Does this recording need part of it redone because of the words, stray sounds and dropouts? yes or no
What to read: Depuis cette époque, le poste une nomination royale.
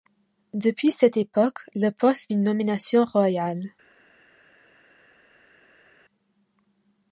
no